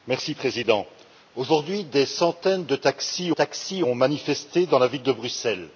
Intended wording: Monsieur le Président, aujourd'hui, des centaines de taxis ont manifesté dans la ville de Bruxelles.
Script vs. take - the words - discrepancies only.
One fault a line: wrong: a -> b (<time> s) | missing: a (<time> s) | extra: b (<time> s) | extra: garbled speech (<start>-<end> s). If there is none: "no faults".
extra: taxis (3.3 s)